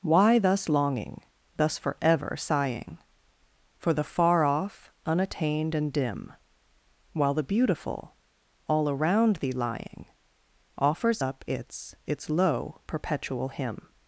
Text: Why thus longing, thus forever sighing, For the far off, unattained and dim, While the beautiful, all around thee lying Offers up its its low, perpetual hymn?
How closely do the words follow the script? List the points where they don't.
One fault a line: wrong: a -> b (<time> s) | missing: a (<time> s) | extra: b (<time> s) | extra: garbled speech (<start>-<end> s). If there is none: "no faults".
no faults